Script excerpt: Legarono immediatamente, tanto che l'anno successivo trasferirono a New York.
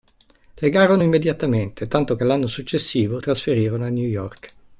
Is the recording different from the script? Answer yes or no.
no